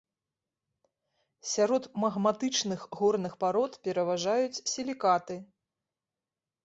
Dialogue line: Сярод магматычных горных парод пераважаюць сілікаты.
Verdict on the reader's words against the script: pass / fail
pass